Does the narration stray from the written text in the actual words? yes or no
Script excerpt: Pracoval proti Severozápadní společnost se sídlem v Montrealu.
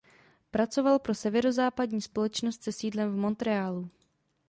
yes